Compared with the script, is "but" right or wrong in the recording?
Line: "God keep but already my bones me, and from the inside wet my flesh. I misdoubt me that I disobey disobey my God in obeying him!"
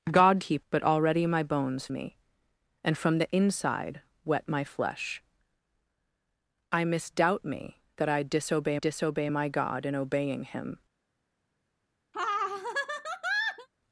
right